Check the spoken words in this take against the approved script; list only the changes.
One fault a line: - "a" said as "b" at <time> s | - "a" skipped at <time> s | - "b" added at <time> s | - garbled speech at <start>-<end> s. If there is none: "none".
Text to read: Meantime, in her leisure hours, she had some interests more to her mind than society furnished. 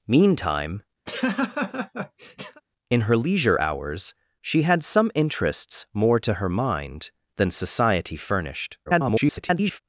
- garbled speech at 8.9-9.8 s